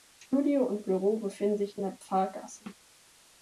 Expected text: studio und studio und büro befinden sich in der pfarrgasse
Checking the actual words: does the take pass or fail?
fail